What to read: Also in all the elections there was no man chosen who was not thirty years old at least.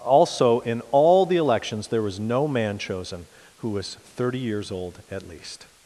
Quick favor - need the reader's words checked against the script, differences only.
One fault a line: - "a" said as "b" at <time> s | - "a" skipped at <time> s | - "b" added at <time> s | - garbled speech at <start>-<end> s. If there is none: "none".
- "not" skipped at 4.0 s